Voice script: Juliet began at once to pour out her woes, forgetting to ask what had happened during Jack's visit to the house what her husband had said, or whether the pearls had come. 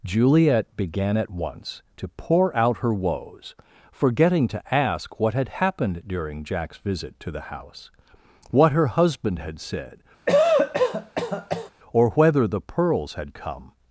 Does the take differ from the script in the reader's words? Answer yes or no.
no